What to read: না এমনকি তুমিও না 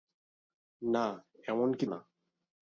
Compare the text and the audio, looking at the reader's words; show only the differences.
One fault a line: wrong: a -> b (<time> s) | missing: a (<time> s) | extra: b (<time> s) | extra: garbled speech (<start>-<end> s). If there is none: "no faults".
missing: তুমিও (1.9 s)